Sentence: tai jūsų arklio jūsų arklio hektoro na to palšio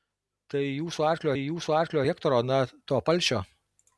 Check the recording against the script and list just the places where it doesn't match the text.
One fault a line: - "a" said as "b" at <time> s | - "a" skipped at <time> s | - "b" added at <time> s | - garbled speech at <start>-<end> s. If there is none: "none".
none